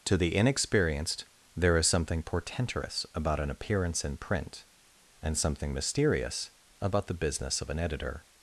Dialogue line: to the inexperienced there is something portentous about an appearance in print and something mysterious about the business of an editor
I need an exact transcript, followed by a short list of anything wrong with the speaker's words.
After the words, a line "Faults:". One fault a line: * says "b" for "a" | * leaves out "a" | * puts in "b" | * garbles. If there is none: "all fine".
to the inexperienced there is something portentous about an appearance in print and something mysterious about the business of an editor
Faults:
all fine